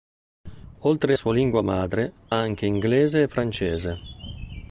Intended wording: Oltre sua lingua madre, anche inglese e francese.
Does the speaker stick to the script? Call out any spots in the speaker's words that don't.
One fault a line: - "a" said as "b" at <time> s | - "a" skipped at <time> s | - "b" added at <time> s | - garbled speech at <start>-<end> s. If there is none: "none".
none